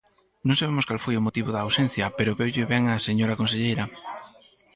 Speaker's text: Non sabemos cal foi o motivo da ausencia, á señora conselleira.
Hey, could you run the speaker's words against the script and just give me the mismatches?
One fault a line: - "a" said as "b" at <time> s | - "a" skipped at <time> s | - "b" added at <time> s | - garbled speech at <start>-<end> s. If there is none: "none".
- "pero veulle ben" added at 2.2 s